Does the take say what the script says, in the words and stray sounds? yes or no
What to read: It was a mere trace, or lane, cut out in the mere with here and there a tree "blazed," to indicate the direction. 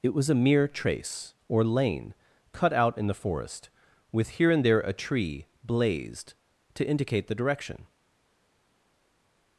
no